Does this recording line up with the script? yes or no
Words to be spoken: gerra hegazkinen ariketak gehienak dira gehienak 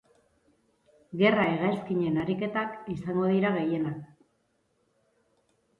no